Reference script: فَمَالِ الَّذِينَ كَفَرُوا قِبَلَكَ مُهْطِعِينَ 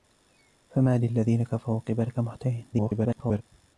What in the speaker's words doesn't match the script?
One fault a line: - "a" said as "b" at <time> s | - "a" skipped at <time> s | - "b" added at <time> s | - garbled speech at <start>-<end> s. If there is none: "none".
- garbled speech at 2.7-3.4 s